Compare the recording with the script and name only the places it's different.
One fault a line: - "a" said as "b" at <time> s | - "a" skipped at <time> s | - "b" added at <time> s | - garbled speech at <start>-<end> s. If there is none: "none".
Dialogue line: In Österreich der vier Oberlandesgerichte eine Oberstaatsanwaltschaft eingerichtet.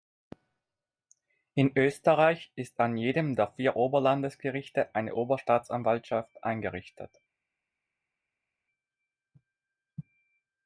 - "ist an jedem" added at 2.5 s